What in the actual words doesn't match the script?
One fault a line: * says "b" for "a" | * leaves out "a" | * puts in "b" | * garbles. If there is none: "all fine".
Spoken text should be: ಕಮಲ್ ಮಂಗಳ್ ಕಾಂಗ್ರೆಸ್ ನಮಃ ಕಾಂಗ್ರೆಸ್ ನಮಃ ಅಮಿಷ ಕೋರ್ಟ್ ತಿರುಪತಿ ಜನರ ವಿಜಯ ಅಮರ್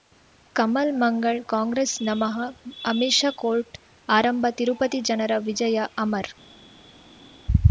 * leaves out "ಕಾಂಗ್ರೆಸ್ ನಮಃ"
* puts in "ಆರಂಭ"